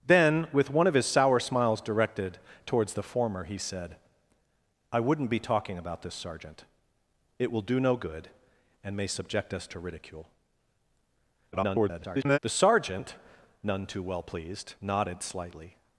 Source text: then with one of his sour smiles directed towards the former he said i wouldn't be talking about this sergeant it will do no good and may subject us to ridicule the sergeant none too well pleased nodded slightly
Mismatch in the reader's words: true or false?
true